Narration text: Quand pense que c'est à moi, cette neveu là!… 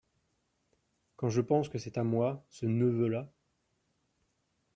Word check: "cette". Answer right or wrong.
wrong